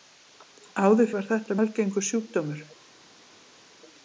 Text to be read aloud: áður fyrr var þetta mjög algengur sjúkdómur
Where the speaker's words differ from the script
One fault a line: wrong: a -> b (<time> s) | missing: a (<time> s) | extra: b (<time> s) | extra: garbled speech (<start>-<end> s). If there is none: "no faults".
missing: fyrr (1.1 s)
missing: mjög (1.6 s)